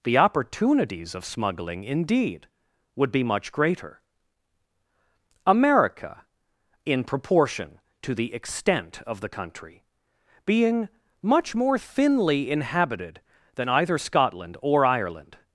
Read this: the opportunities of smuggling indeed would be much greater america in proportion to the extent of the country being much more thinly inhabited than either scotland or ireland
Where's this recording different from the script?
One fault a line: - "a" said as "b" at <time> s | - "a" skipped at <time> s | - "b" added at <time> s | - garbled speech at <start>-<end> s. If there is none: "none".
none